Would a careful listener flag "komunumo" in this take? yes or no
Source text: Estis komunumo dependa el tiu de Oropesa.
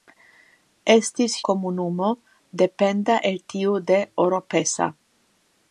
no